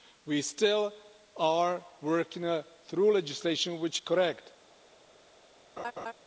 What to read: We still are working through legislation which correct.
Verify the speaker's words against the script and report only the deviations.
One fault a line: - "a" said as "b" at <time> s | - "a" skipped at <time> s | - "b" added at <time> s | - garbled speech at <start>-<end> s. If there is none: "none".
none